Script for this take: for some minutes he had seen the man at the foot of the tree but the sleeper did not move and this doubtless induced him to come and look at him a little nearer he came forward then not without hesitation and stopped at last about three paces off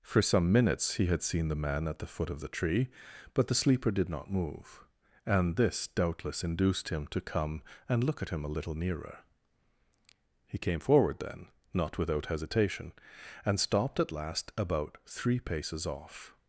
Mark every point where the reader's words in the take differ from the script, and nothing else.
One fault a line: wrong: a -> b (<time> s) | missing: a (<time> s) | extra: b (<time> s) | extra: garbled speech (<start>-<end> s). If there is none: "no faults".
no faults